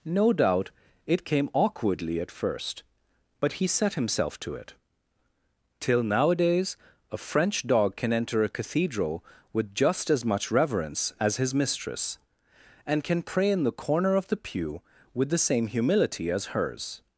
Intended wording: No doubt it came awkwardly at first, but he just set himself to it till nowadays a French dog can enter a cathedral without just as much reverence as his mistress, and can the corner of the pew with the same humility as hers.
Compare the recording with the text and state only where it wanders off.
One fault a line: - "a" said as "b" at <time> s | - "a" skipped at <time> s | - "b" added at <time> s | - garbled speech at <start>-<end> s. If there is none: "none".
- "just" skipped at 3.7 s
- "without" said as "with" at 9.5 s
- "pray in" added at 13.2 s